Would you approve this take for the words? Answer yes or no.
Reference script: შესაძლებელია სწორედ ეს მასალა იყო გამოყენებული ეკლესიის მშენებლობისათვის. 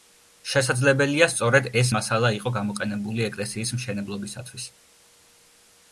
yes